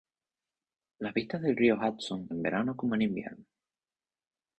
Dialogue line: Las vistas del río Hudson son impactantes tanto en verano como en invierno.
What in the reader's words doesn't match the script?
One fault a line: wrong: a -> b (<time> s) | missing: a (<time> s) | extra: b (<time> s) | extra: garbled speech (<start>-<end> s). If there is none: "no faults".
missing: son impactantes tanto (2.3 s)